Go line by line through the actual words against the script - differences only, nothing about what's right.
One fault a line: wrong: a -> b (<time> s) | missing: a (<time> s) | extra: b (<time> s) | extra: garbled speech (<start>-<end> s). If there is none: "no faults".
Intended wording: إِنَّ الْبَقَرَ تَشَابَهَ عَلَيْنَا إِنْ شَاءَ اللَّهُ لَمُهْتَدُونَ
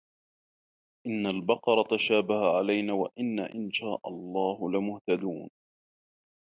extra: وَإِنَّا (2.9 s)